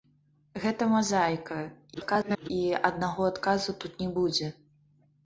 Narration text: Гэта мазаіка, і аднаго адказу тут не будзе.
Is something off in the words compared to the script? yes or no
yes